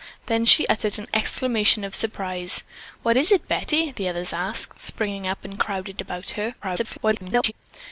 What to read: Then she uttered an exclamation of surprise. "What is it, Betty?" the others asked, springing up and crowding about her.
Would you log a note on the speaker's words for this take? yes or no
yes